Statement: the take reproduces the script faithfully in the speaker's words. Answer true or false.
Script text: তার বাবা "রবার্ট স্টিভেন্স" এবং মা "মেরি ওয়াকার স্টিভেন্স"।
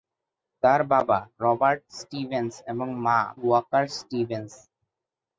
false